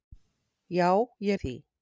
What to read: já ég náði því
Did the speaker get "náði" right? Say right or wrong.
wrong